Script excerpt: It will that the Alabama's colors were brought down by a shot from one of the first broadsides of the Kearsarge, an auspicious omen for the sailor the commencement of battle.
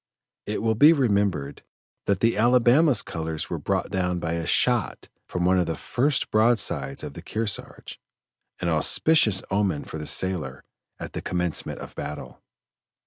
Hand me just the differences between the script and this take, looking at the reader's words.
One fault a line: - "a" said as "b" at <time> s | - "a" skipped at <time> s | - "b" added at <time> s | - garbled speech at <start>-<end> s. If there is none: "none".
- "be remembered" added at 0.7 s
- "at" added at 11.0 s